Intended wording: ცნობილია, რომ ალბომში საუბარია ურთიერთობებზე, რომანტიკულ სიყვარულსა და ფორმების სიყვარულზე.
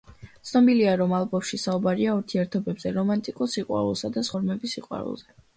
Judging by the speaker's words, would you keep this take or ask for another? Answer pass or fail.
pass